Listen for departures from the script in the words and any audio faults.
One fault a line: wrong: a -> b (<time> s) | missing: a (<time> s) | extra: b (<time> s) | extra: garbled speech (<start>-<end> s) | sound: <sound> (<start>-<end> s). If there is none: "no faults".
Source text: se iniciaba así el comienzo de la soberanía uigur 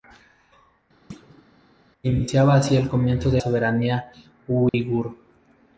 sound: thud (1.1-1.4 s)
missing: la (3.4 s)
sound: dropout (4.7-4.7 s)